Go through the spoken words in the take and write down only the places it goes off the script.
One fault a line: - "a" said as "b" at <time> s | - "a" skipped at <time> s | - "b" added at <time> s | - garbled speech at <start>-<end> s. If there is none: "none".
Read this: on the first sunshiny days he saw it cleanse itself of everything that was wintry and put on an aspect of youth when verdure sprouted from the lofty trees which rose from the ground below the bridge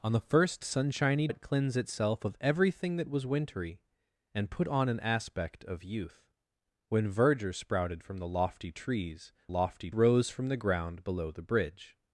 - "days he saw" skipped at 1.3 s
- "which" said as "lofty" at 9.5 s